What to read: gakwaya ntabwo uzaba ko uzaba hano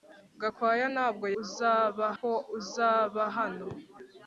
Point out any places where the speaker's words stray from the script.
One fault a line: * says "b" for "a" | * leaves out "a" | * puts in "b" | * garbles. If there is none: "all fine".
all fine